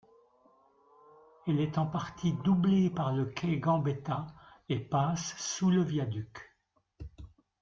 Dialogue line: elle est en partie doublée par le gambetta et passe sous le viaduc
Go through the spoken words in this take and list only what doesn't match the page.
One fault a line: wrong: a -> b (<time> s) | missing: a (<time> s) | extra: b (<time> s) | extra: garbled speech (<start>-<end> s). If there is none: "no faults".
extra: quai (3.2 s)